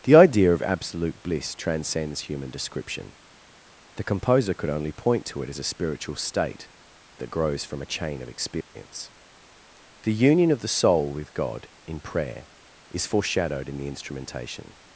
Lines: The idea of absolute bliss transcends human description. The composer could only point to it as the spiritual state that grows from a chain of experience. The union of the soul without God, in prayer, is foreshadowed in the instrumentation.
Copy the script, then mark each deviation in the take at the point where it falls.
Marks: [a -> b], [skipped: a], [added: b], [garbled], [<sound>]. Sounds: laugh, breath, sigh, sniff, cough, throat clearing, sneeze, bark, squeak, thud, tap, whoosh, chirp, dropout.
The idea of absolute bliss transcends human description. The composer could only point to it as [the -> a] spiritual state that grows from a chain of experience. [dropout] The union of the soul [without -> with] God, in prayer, is foreshadowed in the instrumentation.